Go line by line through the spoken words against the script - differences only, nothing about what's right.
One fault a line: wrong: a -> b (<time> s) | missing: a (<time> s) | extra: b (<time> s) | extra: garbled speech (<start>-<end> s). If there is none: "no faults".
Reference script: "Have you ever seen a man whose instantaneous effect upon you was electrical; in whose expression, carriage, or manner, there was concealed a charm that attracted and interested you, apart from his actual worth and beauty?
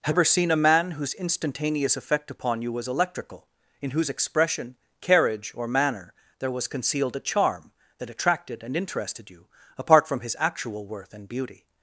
missing: you (0.1 s)